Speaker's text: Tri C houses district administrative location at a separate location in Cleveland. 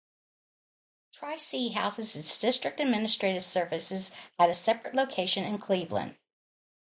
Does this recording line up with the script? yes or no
no